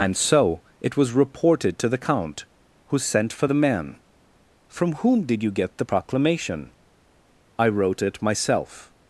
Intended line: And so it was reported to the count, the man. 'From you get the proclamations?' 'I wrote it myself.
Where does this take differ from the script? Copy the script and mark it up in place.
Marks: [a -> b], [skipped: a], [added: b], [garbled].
And so it was reported to the count, [added: who sent for] the man. 'From [added: whom did] you get the [proclamations?' -> proclamation] 'I wrote it myself.